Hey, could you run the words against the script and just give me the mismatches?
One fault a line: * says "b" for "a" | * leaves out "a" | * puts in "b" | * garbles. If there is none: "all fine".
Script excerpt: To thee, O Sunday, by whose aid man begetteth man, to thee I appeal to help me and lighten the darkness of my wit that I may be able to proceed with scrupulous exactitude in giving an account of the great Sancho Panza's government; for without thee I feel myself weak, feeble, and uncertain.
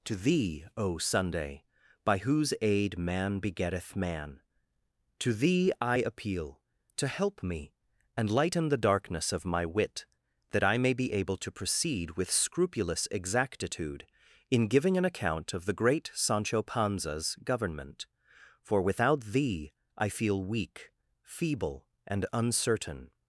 * leaves out "myself"